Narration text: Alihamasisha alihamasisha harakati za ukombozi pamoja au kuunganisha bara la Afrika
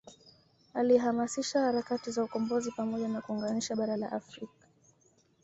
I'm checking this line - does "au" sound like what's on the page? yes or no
no